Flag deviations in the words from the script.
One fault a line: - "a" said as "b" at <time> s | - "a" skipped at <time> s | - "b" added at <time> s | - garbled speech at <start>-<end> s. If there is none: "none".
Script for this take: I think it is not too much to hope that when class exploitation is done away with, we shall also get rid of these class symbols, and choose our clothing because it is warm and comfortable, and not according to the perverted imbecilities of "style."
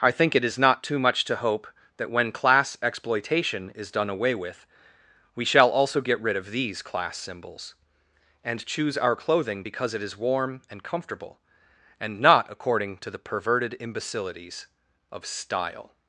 none